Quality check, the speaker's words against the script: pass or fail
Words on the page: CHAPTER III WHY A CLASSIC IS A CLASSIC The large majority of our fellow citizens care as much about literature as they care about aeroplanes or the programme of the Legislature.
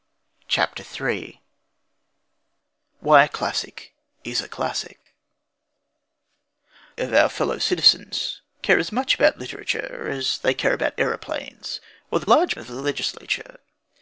fail